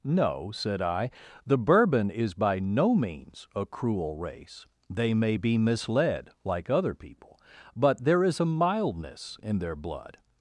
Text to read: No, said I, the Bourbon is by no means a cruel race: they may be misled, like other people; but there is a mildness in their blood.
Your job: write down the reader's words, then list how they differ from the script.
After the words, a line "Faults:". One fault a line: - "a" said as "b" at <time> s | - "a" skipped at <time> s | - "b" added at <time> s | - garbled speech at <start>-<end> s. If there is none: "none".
No, said I, the Bourbon is by no means a cruel race: they may be misled, like other people; but there is a mildness in their blood.
Faults:
none